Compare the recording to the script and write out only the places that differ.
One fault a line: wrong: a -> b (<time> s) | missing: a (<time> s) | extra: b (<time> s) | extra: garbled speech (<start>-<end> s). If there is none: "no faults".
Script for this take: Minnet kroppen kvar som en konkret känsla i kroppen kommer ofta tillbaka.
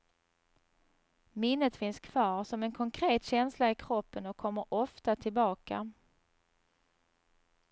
wrong: kroppen -> finns (1.8 s)
extra: och (4.2 s)